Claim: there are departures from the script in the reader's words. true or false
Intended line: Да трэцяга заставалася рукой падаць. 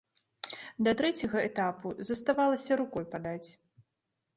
true